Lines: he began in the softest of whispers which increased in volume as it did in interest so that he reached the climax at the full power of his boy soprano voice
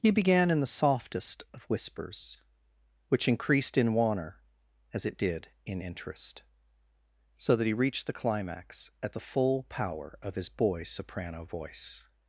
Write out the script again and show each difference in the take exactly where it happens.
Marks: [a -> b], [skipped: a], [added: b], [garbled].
he began in the softest of whispers which increased in [volume -> wanner] as it did in interest so that he reached the climax at the full power of his boy soprano voice